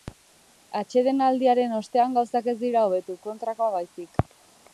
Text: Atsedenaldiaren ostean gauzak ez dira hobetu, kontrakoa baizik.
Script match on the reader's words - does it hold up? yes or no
yes